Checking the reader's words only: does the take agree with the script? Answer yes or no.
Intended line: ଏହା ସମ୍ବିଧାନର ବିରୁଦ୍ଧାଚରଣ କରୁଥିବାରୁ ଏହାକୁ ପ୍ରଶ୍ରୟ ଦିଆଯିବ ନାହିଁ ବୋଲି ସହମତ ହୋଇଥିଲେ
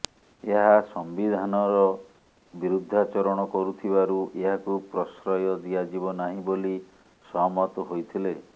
yes